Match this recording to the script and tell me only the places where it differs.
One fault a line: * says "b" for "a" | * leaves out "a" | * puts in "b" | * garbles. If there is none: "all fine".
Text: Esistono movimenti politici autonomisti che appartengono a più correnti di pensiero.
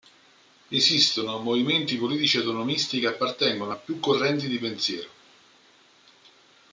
all fine